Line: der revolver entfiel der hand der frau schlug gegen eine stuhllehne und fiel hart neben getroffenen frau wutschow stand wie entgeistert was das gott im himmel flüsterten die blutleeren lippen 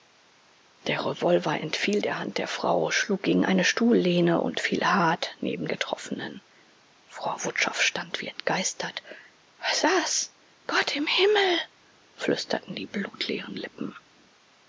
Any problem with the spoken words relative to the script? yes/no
no